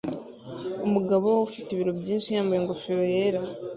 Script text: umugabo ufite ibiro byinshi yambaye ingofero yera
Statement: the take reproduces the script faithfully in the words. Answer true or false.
true